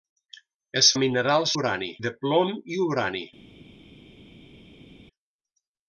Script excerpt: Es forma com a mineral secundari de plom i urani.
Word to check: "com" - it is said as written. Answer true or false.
false